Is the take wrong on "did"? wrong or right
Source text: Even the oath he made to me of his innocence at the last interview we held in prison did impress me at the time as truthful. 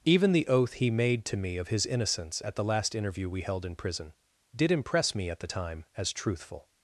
right